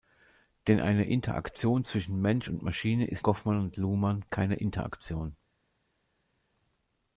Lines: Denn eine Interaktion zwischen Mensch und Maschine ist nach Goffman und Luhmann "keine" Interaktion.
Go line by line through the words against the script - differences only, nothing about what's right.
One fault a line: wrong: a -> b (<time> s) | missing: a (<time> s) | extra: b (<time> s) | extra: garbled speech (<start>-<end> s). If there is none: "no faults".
missing: nach (3.3 s)